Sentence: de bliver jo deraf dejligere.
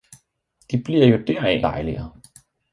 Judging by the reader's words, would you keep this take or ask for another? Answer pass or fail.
pass